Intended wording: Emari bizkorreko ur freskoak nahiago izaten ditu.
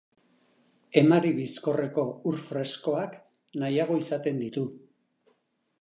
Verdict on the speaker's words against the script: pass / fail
pass